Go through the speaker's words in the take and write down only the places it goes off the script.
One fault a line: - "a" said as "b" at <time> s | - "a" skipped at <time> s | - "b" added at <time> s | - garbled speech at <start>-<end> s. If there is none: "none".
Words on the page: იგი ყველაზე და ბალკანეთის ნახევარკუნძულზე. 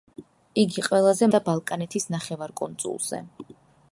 none